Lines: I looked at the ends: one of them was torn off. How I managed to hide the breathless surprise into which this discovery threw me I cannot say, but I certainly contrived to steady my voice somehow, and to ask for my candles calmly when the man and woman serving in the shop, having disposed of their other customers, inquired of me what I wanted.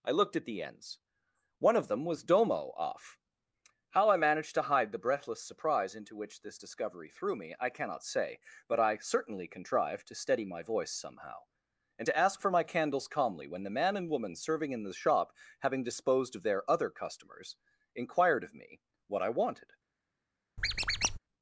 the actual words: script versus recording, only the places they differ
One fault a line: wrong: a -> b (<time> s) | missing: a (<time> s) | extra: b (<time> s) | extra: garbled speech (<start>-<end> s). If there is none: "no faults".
wrong: torn -> domo (2.2 s)